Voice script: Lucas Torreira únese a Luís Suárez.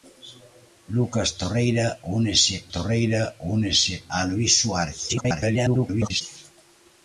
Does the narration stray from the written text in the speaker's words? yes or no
yes